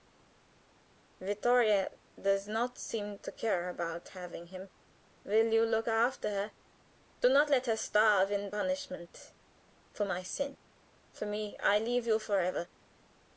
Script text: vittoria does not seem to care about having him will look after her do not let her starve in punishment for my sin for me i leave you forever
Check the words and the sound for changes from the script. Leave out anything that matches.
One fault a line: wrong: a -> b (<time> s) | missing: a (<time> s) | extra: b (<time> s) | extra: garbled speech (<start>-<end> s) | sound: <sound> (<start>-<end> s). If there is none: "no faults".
extra: you (5.5 s)